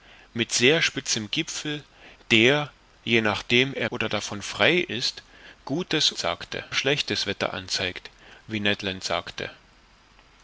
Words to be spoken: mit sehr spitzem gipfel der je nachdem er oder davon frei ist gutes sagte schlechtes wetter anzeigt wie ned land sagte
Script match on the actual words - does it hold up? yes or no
yes